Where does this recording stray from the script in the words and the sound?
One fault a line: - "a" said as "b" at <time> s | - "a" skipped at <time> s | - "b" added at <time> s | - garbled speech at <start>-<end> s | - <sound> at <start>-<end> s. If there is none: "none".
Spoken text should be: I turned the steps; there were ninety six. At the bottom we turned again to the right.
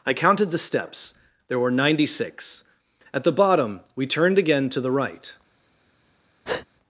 - "turned" said as "counted" at 0.1 s
- breath at 6.4-6.7 s